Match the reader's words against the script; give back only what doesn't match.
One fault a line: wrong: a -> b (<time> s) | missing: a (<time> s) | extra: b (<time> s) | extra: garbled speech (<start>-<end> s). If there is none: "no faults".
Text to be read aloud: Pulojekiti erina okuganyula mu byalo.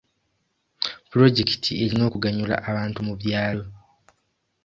extra: abantu (2.7 s)